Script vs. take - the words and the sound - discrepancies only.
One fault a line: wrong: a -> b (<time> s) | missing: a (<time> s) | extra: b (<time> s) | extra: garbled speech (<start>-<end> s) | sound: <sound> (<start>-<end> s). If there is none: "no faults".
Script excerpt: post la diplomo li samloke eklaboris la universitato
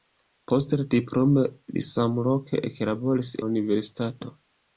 no faults